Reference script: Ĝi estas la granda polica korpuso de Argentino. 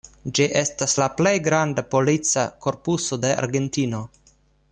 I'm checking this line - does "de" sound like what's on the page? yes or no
yes